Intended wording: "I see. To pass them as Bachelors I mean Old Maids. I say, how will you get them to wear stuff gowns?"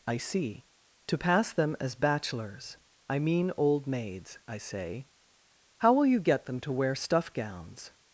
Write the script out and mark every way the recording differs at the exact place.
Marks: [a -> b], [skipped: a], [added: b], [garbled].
"I see. To pass them as Bachelors I mean Old Maids. I say, how will you get them to wear stuff gowns?"